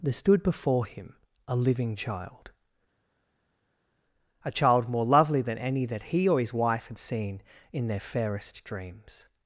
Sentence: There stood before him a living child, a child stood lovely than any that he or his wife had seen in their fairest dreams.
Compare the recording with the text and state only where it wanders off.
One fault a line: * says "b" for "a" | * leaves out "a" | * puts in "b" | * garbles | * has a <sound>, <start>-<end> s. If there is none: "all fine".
* says "more" for "stood"